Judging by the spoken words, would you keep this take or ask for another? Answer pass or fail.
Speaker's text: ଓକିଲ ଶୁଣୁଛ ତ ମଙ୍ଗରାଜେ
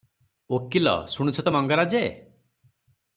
pass